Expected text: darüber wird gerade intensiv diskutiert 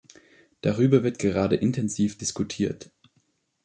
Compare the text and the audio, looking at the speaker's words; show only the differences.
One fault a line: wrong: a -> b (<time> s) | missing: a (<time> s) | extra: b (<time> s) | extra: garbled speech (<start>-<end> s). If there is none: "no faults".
no faults